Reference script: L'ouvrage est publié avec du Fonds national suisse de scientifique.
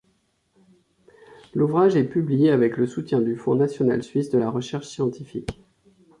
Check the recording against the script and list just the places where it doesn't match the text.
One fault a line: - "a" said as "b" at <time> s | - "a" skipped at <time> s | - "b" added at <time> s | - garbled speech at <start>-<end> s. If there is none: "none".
- "le soutien" added at 2.8 s
- "la recherche" added at 4.4 s